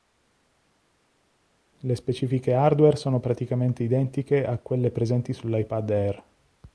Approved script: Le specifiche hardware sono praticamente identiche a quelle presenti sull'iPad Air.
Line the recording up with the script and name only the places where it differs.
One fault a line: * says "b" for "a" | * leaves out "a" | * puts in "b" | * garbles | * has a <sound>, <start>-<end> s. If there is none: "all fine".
all fine